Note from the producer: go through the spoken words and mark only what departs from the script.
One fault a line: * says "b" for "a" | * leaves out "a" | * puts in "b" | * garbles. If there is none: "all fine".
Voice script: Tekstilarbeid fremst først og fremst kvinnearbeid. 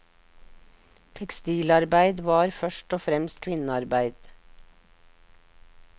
* says "var" for "fremst"